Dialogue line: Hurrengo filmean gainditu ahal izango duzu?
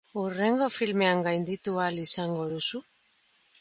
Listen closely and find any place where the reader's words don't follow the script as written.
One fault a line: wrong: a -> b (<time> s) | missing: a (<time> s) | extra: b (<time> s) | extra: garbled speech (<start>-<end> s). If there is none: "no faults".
no faults